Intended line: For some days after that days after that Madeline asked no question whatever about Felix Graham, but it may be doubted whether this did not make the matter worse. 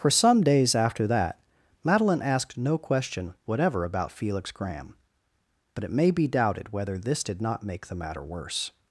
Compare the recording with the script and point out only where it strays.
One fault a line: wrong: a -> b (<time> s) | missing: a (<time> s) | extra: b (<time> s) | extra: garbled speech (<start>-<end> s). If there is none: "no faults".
missing: days after that (1.4 s)